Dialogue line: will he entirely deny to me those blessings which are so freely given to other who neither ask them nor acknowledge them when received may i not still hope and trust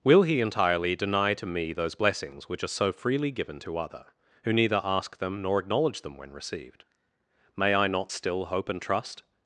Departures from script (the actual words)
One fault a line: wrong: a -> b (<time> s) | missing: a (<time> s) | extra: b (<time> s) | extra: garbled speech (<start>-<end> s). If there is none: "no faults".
no faults